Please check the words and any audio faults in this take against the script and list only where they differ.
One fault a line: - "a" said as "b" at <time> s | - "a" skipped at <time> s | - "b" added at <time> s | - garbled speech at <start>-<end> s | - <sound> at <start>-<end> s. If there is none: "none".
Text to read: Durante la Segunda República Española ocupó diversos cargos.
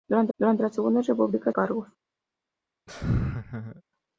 - "durante" added at 0.4 s
- "Española ocupó diversos" skipped at 1.5 s
- laugh at 2.9-3.8 s